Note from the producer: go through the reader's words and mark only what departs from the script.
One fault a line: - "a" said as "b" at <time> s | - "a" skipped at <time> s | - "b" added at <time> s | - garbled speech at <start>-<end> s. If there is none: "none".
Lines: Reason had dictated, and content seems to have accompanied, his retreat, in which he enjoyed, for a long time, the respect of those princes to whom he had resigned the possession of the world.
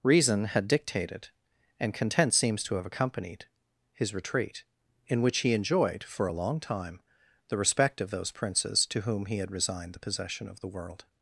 none